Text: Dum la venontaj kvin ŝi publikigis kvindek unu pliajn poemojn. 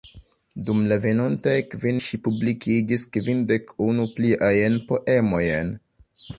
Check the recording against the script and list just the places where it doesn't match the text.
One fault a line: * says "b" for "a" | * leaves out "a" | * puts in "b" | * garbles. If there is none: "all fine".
all fine